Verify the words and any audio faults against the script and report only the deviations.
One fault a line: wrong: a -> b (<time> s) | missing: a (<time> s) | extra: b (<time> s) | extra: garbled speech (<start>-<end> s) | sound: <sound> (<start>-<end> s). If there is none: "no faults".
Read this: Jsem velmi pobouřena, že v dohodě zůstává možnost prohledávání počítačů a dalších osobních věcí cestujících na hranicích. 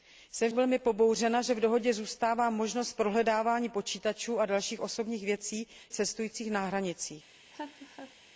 sound: laugh (7.5-8.2 s)